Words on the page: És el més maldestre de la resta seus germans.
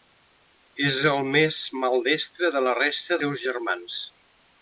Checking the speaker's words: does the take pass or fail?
pass